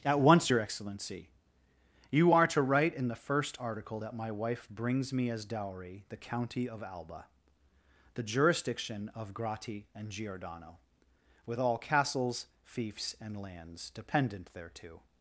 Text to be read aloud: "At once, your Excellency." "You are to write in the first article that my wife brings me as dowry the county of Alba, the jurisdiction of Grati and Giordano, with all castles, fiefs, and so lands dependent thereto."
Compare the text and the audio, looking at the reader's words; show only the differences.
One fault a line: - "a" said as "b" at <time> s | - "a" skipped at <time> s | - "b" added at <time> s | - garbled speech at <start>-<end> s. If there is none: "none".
- "so" skipped at 13.4 s